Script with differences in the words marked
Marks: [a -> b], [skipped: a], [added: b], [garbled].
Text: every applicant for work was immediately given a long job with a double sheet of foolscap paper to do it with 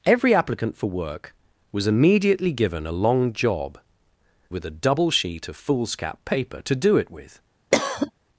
every applicant for work was immediately given a long job with a double sheet of foolscap paper to do it with